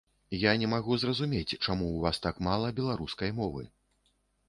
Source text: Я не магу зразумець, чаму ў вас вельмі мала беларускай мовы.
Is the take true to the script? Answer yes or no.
no